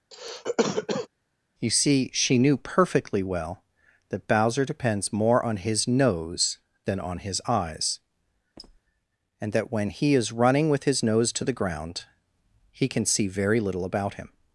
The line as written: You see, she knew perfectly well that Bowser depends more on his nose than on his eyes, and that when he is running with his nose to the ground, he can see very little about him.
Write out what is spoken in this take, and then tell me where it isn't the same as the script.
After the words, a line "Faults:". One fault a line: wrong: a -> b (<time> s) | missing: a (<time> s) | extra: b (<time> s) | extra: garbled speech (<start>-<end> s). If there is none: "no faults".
You see, she knew perfectly well that Bowser depends more on his nose than on his eyes, and that when he is running with his nose to the ground, he can see very little about him.
Faults:
no faults